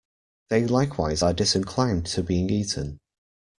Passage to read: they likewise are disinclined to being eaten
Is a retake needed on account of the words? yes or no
no